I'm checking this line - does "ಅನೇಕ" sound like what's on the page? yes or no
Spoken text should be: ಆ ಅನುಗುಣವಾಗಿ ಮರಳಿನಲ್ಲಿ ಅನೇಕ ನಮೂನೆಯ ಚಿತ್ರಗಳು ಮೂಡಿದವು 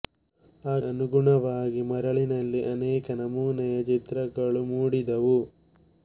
yes